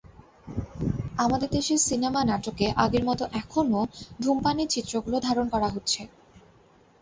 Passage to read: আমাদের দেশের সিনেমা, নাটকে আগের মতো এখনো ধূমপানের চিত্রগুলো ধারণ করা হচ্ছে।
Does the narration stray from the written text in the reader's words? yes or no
no